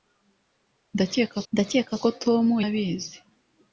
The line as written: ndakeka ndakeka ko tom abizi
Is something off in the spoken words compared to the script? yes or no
no